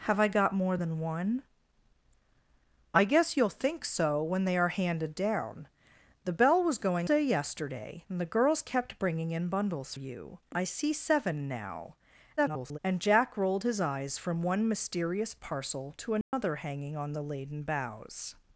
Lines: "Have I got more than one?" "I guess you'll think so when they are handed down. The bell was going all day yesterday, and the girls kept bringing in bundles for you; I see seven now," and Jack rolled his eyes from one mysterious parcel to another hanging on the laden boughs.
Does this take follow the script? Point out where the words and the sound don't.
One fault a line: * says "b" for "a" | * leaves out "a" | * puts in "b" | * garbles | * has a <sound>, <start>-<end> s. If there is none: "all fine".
* leaves out "all"
* leaves out "for"
* garbles
* has a dropout, 16.2-16.3 s